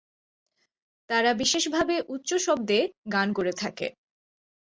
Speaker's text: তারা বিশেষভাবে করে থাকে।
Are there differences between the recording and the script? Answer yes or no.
yes